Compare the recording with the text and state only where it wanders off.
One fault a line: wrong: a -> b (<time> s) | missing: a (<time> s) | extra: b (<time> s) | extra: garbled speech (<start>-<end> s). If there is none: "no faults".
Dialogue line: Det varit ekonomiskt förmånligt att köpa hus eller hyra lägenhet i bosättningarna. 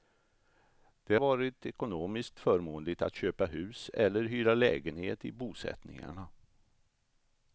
no faults